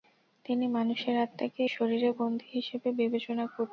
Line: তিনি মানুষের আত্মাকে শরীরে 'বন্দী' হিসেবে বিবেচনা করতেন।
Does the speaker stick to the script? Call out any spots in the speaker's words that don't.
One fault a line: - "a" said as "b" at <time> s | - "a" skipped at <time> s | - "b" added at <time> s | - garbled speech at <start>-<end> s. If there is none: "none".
none